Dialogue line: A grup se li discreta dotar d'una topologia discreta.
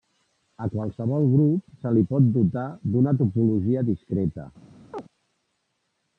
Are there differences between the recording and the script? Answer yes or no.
yes